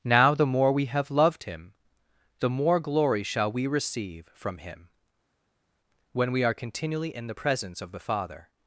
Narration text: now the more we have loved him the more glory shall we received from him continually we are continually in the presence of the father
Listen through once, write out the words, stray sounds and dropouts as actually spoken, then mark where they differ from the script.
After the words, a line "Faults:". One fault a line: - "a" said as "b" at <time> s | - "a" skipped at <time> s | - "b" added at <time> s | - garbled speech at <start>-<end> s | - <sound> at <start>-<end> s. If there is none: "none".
now the more we have loved him the more glory shall we receive from him when we are continually in the presence of the father
Faults:
- "received" said as "receive" at 3.7 s
- "continually" said as "when" at 6.1 s